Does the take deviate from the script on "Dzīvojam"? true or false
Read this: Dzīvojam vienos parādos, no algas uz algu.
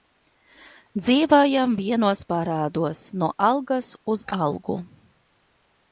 false